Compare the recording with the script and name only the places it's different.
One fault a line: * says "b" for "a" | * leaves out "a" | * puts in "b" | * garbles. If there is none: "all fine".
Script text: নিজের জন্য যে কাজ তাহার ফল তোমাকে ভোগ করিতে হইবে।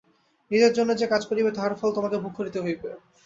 * puts in "করিবে"